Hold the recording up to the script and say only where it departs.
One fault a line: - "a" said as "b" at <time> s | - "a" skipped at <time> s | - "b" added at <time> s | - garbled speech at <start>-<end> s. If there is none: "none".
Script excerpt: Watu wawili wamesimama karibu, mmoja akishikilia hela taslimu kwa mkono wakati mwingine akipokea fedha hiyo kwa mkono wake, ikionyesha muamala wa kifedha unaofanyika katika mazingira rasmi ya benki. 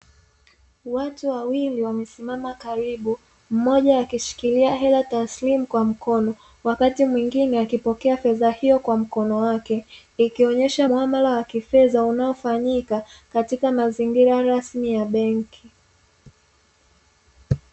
none